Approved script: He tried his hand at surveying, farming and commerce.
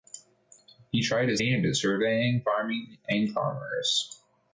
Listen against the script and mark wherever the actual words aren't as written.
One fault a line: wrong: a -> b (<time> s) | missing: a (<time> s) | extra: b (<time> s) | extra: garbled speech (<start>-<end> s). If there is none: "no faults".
no faults